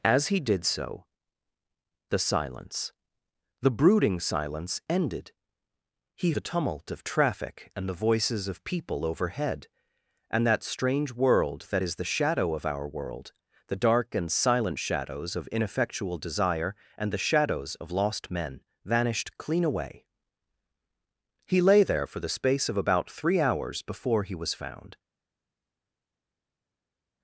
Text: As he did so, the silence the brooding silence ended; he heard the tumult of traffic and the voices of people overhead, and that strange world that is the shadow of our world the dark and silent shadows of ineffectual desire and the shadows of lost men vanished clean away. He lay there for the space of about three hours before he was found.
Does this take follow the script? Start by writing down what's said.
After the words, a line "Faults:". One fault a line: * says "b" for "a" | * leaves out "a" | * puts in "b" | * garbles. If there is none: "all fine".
As he did so, the silence the brooding silence ended; he the tumult of traffic and the voices of people overhead, and that strange world that is the shadow of our world the dark and silent shadows of ineffectual desire and the shadows of lost men vanished clean away. He lay there for the space of about three hours before he was found.
Faults:
* leaves out "heard"